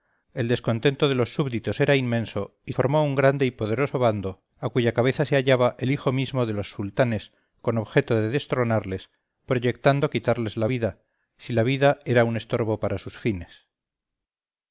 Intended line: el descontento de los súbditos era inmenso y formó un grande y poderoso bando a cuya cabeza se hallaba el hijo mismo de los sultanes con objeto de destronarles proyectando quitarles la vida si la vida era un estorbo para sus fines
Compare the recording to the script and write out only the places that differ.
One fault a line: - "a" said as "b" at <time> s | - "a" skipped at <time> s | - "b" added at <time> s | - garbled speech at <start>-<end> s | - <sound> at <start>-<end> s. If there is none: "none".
none